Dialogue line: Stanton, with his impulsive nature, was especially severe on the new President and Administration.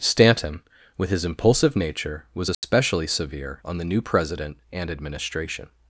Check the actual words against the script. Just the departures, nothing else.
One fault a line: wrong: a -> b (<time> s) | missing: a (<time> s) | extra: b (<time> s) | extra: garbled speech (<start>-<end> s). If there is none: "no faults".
no faults